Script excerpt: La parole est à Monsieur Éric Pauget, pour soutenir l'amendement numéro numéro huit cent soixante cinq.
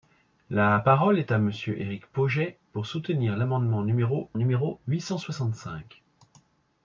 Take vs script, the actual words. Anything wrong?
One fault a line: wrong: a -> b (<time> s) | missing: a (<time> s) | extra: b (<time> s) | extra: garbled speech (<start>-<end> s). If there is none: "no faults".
no faults